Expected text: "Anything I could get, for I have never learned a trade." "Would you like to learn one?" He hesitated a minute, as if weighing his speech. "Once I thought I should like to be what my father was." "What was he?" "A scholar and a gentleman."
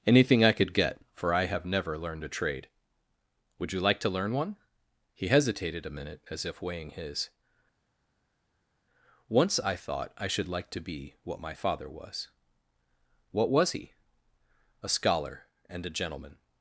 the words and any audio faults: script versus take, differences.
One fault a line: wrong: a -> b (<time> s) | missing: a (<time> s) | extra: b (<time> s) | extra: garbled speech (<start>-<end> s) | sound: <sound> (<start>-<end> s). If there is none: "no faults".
missing: speech (7.3 s)